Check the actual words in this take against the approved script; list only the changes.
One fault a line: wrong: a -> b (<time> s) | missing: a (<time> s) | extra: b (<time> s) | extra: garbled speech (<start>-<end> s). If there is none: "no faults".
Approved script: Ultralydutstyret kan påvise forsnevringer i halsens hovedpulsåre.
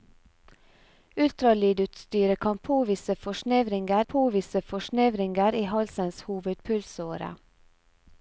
extra: påvise forsnevringer (4.0 s)